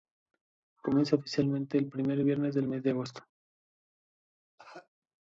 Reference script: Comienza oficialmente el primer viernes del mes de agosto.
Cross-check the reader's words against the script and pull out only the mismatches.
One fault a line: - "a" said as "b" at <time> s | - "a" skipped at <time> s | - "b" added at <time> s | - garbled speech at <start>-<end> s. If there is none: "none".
none